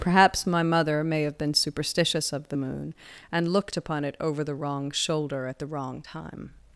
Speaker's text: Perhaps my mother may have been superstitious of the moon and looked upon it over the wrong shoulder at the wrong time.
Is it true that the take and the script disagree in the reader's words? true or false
false